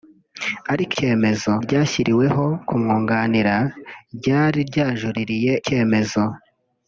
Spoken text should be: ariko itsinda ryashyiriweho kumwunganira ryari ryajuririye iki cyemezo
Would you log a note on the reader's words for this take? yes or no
yes